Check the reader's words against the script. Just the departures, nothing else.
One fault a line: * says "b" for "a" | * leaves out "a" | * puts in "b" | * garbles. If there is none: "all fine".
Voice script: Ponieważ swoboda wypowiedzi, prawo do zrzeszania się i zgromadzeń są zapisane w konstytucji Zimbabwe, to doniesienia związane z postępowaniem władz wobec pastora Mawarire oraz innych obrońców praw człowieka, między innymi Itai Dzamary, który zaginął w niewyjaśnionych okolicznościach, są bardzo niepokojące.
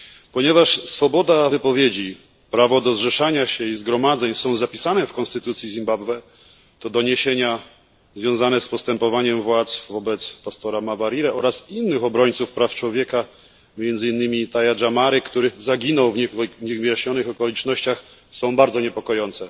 all fine